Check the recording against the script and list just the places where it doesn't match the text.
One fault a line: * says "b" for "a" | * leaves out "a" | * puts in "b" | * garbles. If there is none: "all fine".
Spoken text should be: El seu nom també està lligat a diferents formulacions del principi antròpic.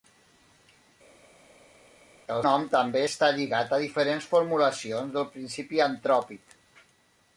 * leaves out "seu"